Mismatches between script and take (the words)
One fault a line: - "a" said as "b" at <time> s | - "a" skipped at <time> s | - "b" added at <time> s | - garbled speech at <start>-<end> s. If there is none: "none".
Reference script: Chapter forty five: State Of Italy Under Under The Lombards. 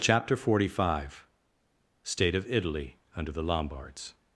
- "Under" skipped at 3.3 s